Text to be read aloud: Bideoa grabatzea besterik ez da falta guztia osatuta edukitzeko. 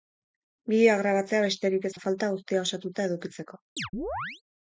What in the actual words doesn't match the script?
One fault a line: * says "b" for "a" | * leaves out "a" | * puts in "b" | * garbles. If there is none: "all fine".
all fine